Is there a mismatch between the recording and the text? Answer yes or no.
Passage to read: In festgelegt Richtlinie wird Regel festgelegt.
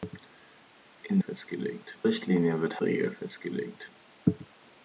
no